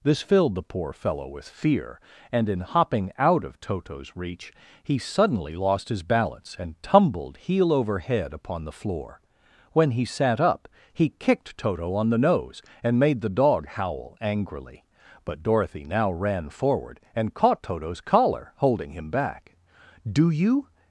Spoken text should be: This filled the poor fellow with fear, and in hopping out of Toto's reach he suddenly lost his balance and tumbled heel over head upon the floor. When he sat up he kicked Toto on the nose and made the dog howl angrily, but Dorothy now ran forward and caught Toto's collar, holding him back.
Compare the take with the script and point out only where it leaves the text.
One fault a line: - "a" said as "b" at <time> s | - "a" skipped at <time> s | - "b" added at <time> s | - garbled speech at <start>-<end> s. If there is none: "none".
- "Do you" added at 20.1 s